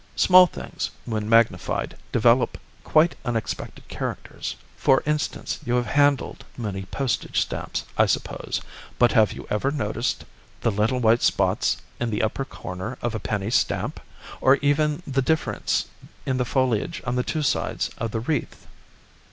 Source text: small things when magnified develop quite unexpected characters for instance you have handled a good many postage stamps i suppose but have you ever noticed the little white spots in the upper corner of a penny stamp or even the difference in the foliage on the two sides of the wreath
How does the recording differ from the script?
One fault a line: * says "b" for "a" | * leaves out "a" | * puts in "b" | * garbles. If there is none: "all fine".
* leaves out "a good"